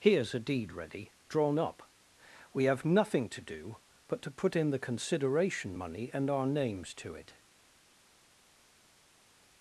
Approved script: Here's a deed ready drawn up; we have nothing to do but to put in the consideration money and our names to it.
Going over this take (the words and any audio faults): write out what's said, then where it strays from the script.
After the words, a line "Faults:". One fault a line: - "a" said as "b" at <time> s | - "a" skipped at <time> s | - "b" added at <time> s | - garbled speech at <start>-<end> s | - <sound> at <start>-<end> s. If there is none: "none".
Here's a deed ready drawn up; we have nothing to do but to put in the consideration money and our names to it.
Faults:
none